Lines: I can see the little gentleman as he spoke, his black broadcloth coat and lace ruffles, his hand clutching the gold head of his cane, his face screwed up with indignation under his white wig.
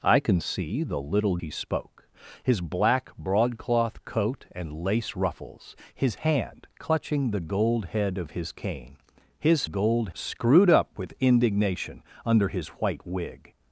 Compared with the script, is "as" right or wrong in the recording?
wrong